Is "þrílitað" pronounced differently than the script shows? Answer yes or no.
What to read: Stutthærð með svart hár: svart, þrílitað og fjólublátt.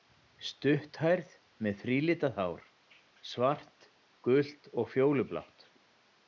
yes